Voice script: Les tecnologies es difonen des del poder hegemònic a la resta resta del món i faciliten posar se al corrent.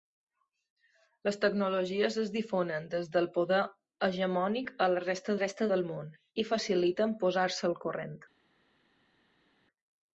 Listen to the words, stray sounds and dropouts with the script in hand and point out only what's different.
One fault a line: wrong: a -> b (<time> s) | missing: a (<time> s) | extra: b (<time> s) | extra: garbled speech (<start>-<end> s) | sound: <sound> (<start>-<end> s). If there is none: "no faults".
no faults